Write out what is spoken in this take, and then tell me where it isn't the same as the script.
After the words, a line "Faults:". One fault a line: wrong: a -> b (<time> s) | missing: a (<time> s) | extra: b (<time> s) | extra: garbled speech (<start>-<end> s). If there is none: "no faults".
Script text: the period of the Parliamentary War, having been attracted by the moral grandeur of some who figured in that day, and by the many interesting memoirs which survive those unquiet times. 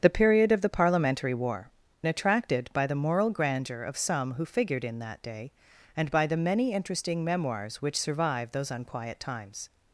the period of the Parliamentary War, attracted by the moral grandeur of some who figured in that day, and by the many interesting memoirs which survive those unquiet times.
Faults:
missing: having been (1.7 s)